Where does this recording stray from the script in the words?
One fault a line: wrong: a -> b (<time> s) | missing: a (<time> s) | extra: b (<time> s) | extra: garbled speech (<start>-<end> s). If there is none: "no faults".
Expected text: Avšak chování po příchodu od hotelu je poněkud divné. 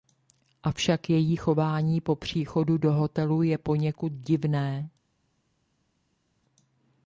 extra: její (1.1 s)
wrong: od -> do (2.8 s)